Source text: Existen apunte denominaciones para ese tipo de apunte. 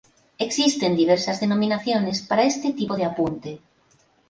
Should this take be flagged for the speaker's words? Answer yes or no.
yes